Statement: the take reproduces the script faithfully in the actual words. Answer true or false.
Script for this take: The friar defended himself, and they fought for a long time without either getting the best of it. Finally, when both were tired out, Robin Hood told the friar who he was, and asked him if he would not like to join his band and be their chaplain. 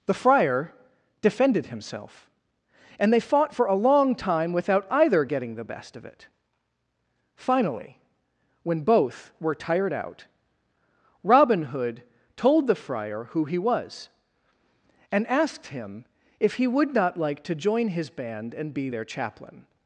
true